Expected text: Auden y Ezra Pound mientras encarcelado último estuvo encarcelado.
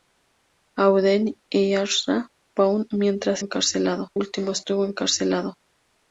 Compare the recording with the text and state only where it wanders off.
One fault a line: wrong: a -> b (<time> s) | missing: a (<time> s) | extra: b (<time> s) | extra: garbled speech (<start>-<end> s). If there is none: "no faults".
no faults